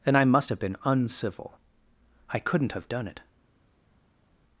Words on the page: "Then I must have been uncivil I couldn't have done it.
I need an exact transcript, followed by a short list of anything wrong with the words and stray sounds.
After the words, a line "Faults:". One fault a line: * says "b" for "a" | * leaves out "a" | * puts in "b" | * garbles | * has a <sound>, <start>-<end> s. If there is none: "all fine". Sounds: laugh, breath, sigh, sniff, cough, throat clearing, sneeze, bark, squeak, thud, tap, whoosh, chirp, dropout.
"Then I must have been uncivil I couldn't have done it.
Faults:
all fine